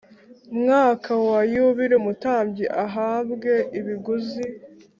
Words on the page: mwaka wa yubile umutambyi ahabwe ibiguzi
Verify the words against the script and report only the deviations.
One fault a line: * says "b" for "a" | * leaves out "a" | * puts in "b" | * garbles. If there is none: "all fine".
all fine